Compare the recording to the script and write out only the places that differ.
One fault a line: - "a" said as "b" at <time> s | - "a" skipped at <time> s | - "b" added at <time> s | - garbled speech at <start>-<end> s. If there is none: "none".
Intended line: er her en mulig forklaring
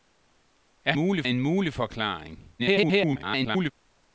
- "her" said as "mulig" at 0.9 s
- garbled speech at 2.6-3.7 s